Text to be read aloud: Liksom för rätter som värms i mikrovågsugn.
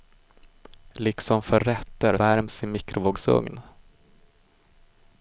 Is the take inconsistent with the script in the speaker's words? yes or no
yes